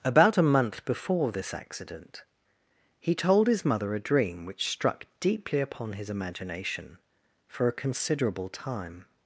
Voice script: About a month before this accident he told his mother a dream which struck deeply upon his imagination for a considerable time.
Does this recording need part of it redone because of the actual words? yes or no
no